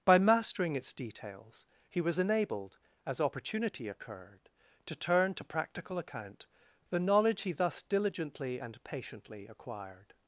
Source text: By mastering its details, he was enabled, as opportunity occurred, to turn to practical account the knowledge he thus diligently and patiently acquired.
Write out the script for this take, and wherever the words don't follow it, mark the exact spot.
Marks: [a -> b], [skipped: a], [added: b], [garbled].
By mastering its details, he was enabled, as opportunity occurred, to turn to practical account the knowledge he thus diligently and patiently acquired.